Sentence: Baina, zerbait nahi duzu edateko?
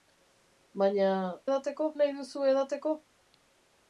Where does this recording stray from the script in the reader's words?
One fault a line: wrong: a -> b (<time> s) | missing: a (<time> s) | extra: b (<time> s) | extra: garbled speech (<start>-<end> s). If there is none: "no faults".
wrong: zerbait -> edateko (1.5 s)